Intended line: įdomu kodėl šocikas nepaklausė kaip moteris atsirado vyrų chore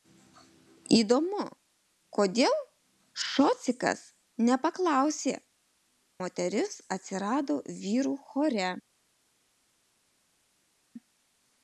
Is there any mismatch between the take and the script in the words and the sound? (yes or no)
yes